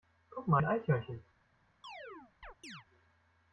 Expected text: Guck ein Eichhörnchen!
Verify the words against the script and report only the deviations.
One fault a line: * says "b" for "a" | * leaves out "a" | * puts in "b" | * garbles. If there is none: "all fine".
* puts in "mal"